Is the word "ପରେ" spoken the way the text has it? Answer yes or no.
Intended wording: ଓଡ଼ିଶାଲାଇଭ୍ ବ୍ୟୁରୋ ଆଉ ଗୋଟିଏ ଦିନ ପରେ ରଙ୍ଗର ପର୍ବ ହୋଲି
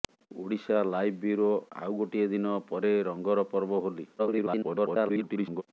yes